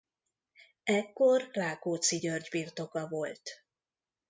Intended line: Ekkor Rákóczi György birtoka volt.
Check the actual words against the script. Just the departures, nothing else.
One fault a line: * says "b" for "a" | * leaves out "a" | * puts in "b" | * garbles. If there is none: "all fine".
all fine